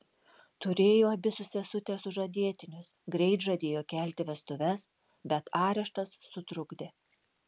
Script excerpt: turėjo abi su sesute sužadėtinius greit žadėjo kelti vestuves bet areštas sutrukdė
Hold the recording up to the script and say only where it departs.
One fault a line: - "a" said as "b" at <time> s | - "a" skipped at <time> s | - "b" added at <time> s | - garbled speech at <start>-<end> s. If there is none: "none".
none